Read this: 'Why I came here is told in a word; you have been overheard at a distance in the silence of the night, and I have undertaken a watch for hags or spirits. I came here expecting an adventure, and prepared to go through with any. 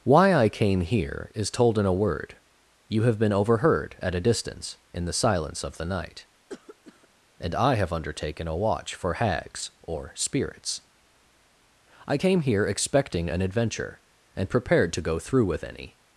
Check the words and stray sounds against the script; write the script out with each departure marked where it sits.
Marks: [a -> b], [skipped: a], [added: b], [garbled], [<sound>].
'Why I came here is told in a word; you have been overheard at a distance in the silence of the night, [cough] and I have undertaken a watch for hags or spirits. I came here expecting an adventure, and prepared to go through with any.